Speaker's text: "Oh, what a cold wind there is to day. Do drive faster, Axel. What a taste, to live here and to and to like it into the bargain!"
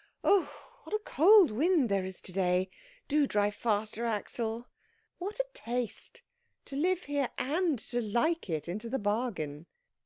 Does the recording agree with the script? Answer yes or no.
no